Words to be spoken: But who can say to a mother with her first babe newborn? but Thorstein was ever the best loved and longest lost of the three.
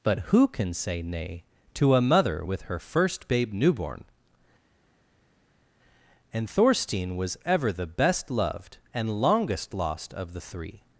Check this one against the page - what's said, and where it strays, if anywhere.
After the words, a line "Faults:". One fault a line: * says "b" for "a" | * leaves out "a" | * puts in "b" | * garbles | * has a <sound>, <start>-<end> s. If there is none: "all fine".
But who can say nay to a mother with her first babe newborn? and Thorstein was ever the best loved and longest lost of the three.
Faults:
* puts in "nay"
* says "and" for "but"